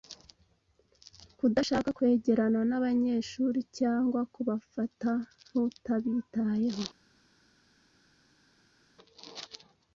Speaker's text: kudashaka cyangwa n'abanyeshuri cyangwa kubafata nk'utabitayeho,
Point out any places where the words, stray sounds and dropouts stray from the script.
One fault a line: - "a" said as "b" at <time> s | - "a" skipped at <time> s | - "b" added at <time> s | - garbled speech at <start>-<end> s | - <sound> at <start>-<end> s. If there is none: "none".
- "cyangwa" said as "kwegerana" at 2.0 s